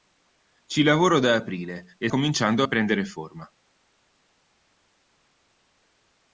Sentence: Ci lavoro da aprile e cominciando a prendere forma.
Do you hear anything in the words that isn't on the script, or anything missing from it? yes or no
no